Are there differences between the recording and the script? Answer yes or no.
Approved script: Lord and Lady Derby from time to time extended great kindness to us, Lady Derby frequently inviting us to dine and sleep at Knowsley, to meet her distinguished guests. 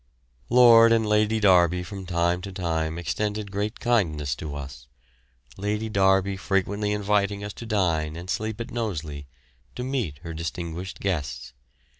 no